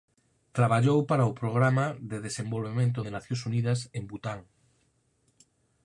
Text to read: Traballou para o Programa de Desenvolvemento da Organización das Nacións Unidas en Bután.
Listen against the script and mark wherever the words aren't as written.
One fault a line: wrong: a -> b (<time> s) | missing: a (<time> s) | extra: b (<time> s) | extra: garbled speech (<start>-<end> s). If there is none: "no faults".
missing: da Organización (3.0 s)